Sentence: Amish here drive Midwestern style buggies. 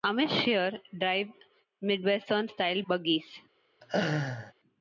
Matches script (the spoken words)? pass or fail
pass